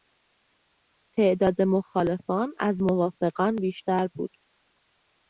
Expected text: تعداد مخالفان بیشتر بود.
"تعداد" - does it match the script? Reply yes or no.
yes